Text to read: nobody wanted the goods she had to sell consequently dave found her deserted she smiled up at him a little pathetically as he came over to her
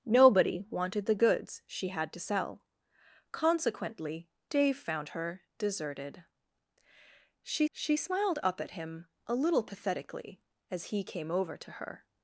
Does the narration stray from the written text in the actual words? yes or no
yes